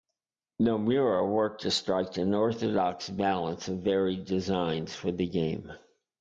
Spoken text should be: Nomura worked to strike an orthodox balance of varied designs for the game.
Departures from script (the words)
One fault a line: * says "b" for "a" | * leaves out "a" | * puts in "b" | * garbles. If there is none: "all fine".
all fine